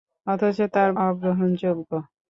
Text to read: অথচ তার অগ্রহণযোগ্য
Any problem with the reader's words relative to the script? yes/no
no